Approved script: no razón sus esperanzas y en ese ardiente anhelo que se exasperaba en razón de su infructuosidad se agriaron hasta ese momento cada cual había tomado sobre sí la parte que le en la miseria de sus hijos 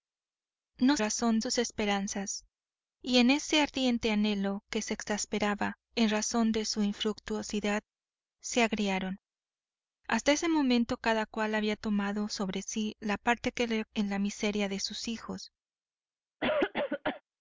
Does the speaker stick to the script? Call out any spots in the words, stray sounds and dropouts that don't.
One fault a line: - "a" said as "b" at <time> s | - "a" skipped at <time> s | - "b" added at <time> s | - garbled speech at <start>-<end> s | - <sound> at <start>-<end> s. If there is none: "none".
- cough at 16.4-17.2 s